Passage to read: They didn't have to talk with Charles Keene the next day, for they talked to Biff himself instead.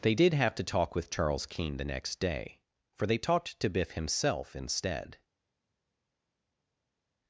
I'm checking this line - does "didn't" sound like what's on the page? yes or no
no